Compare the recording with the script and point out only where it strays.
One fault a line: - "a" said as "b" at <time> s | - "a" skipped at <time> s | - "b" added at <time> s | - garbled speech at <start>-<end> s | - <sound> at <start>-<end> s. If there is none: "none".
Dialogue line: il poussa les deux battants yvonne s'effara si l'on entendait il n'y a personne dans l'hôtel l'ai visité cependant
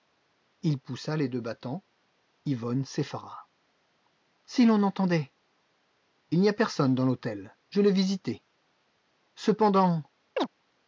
- "je" added at 7.7 s
- chirp at 10.4-10.5 s